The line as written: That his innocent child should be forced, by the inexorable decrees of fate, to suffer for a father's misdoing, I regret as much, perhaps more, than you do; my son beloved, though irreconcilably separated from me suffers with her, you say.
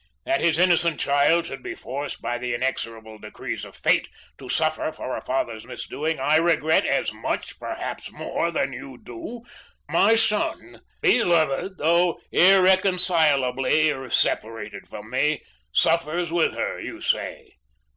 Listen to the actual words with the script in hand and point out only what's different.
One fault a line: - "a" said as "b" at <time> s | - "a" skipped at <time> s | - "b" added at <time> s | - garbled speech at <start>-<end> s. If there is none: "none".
none